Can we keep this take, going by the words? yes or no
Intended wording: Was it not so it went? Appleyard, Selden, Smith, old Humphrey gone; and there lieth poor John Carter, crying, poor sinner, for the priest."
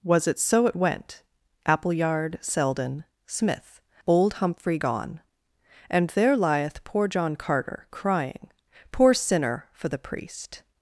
no